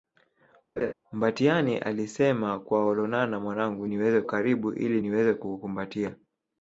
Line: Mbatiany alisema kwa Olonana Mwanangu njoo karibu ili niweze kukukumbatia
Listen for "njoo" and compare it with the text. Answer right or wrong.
wrong